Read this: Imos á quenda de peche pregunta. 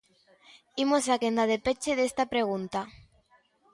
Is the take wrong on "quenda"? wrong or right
right